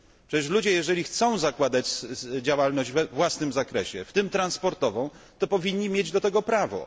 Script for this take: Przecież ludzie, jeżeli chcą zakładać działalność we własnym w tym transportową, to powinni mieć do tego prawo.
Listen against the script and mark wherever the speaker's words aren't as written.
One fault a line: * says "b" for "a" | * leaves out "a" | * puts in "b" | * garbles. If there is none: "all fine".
* puts in "zakresie"